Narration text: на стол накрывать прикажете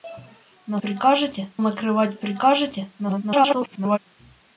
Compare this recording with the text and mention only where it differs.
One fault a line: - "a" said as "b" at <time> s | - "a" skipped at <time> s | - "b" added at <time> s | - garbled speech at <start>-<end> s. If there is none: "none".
- "стол" said as "прикажете" at 0.8 s
- garbled speech at 3.0-4.0 s